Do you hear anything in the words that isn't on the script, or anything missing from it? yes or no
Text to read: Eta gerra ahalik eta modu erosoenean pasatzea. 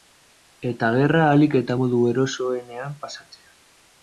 no